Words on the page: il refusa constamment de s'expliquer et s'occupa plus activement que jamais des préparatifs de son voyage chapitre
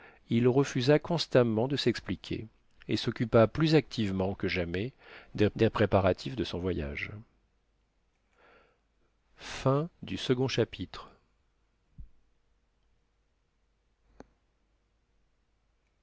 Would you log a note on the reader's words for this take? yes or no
yes